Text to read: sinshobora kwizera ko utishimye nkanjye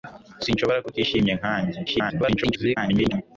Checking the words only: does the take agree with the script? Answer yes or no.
no